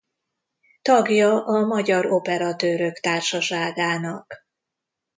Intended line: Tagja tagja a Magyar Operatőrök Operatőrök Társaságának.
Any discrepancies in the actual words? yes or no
yes